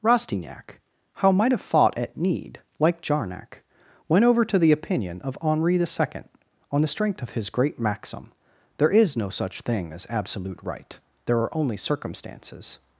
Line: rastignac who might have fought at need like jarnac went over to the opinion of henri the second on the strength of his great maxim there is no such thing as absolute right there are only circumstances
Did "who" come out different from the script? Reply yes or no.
yes